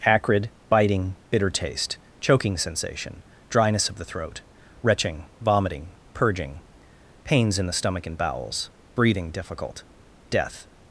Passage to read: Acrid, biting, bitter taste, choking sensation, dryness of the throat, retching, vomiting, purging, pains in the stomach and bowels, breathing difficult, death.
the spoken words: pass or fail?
pass